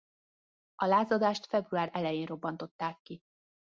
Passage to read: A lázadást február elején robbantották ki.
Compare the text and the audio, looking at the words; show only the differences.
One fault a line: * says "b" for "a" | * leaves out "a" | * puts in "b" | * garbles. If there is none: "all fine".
all fine